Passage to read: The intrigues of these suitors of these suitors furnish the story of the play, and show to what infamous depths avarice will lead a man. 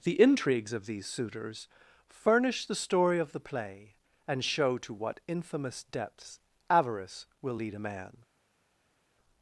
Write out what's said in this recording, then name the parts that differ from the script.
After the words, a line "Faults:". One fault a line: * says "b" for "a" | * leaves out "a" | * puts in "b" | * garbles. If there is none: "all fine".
The intrigues of these suitors furnish the story of the play, and show to what infamous depths avarice will lead a man.
Faults:
* leaves out "of these suitors"